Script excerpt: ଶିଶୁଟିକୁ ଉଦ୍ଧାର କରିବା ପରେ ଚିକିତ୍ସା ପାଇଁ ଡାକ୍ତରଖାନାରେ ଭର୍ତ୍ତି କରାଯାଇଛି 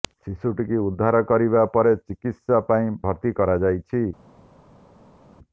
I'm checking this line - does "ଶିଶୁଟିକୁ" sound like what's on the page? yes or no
yes